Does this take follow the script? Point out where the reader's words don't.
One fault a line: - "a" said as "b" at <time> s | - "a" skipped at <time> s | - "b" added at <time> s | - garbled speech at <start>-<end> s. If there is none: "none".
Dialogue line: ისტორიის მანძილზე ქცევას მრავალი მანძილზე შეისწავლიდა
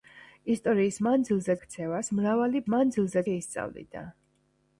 none